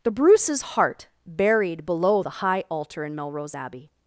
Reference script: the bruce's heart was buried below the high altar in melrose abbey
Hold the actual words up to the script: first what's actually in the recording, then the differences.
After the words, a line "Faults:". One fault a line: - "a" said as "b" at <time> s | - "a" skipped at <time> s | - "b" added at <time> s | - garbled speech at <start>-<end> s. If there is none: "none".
the bruce's heart buried below the high altar in melrose abbey
Faults:
- "was" skipped at 1.1 s